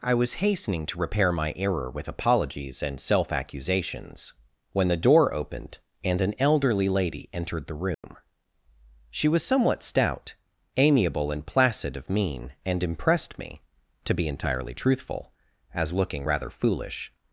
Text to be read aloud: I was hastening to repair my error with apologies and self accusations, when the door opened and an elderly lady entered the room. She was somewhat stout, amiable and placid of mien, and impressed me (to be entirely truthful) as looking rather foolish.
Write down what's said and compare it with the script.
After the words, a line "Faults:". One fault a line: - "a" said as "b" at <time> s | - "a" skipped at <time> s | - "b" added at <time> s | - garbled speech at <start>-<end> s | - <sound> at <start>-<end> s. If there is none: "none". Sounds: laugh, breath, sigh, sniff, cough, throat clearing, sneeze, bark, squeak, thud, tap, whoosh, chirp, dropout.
I was hastening to repair my error with apologies and self accusations, when the door opened and an elderly lady entered the room. She was somewhat stout, amiable and placid of mien, and impressed me (to be entirely truthful) as looking rather foolish.
Faults:
- dropout at 7.9-8.0 s